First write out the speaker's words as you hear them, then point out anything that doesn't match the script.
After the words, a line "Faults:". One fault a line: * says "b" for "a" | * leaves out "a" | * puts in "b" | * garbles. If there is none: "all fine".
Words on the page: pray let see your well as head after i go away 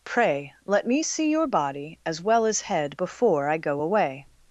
pray let me see your body as well as head before i go away
Faults:
* puts in "me"
* puts in "body as"
* says "before" for "after"